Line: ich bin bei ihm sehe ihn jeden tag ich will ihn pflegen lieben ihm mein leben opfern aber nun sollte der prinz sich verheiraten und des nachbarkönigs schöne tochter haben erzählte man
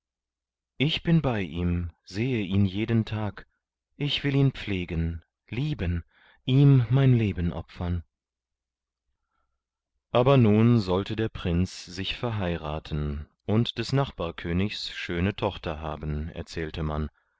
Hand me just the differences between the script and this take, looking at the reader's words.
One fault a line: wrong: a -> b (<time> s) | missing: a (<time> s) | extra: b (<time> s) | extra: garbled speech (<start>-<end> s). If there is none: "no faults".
no faults